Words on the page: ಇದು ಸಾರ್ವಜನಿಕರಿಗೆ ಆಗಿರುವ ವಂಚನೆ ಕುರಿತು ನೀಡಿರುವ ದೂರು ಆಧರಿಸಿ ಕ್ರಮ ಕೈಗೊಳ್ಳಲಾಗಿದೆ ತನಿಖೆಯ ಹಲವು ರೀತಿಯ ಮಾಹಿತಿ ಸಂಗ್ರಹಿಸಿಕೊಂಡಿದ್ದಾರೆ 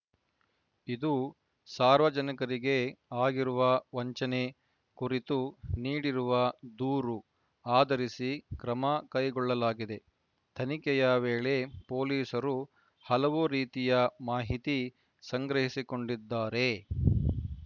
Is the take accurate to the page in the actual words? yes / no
no